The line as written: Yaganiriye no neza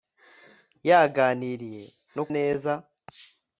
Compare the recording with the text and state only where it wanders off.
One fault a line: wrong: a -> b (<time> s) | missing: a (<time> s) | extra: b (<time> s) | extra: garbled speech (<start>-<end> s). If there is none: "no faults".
no faults